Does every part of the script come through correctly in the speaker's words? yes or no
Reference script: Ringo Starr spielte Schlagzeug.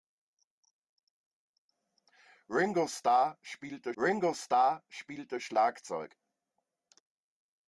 no